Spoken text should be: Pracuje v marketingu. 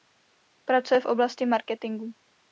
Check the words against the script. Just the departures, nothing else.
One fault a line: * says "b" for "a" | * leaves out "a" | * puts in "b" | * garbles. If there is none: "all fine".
* puts in "oblasti"